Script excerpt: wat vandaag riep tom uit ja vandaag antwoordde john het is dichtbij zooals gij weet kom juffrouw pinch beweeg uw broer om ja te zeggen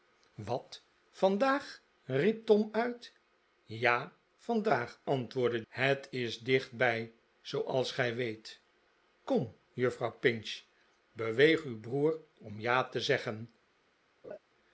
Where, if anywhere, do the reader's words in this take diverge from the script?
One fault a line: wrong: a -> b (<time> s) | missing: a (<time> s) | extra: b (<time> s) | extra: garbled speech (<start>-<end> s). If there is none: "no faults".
missing: john (5.6 s)